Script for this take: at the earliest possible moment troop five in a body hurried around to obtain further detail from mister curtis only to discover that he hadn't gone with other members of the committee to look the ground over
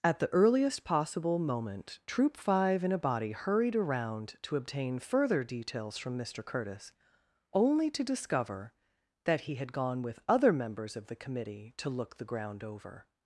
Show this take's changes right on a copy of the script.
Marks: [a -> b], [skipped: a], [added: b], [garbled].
at the earliest possible moment troop five in a body hurried around to obtain further [detail -> details] from mister curtis only to discover that he [hadn't -> had] gone with other members of the committee to look the ground over